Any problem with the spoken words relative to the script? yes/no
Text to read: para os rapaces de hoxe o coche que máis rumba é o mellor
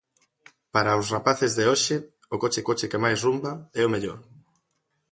yes